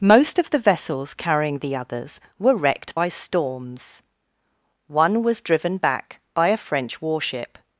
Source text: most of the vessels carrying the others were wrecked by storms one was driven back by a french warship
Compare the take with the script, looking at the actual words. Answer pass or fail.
pass